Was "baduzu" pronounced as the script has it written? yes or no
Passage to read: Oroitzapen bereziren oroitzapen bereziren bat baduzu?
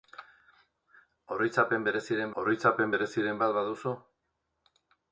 yes